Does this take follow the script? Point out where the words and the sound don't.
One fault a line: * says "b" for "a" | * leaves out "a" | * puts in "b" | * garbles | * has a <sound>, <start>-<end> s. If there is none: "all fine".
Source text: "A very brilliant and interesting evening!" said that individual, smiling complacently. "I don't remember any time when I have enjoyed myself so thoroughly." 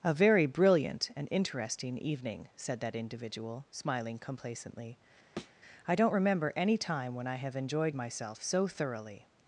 * has a thud, 5.4-5.6 s